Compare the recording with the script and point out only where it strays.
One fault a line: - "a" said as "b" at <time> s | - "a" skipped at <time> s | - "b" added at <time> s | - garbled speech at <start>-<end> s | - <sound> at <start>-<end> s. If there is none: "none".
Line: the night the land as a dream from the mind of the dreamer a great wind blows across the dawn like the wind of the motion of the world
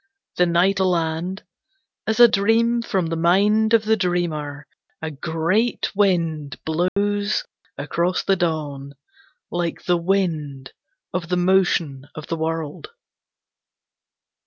- dropout at 6.9-7.0 s